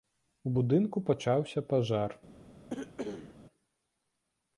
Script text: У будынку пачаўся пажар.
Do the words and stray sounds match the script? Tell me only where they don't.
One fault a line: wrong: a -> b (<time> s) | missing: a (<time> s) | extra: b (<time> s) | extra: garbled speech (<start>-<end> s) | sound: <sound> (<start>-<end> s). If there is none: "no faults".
sound: cough (2.7-3.4 s)